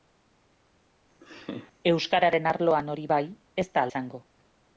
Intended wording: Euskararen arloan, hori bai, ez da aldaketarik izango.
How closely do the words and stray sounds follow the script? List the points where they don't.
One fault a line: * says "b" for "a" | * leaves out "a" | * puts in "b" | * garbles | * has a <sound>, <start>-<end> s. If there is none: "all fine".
* has a laugh, 1.2-1.7 s
* leaves out "aldaketarik"